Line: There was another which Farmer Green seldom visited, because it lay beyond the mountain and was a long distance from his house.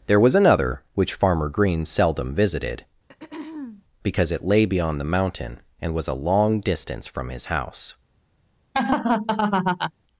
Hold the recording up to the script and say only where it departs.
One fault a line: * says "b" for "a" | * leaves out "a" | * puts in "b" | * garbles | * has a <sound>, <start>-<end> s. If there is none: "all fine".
* has a throat clearing, 3.1-3.8 s
* has a laugh, 8.7-9.9 s